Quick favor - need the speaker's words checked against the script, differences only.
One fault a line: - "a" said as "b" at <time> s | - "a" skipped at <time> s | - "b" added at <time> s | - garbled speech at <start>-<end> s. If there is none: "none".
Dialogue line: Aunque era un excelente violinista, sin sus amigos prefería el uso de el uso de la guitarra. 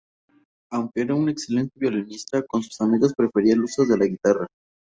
- "sin" said as "con" at 2.5 s
- "el uso de" skipped at 4.0 s